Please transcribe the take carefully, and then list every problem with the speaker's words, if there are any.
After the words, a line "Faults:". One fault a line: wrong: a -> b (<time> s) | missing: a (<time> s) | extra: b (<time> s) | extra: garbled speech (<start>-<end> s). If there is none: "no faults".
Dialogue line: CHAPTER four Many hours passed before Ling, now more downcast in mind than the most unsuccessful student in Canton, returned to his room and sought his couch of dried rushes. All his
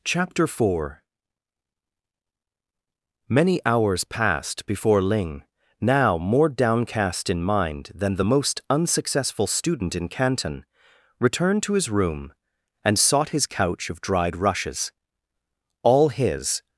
CHAPTER four Many hours passed before Ling, now more downcast in mind than the most unsuccessful student in Canton, returned to his room and sought his couch of dried rushes. All his
Faults:
no faults